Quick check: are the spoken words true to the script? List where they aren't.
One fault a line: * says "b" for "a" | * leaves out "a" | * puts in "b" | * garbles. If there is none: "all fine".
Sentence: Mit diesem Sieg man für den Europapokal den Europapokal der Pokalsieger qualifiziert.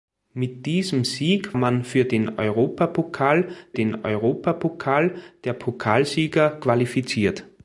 all fine